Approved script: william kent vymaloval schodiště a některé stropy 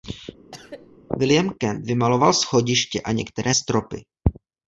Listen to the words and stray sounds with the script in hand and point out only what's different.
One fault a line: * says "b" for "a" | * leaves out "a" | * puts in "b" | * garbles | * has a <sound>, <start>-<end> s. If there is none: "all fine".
* has a cough, 0.5-1.0 s